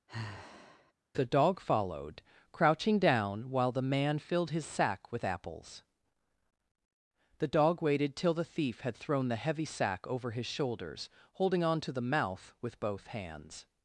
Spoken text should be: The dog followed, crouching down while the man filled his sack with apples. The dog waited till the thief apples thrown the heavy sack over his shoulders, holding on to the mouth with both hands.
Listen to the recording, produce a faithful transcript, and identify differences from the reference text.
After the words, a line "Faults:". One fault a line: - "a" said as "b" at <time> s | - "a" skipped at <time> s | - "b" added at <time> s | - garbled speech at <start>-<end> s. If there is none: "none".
The dog followed, crouching down while the man filled his sack with apples. The dog waited till the thief had thrown the heavy sack over his shoulders, holding on to the mouth with both hands.
Faults:
- "apples" said as "had" at 8.8 s